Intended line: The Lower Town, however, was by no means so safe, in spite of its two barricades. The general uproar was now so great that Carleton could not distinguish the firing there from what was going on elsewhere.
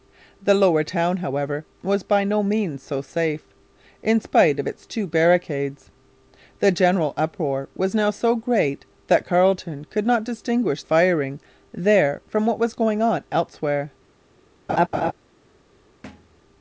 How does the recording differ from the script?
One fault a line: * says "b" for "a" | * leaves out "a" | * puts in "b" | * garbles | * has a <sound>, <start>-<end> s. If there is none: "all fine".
* leaves out "the"
* has a laugh, 14.7-15.1 s
* has a thud, 16.0-16.4 s